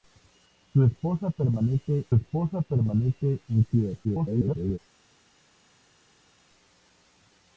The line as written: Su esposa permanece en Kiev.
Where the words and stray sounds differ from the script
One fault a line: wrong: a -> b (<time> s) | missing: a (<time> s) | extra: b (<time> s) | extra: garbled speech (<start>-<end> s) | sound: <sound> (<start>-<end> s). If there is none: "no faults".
extra: esposa permanece (2.1 s)
extra: garbled speech (4.0-4.8 s)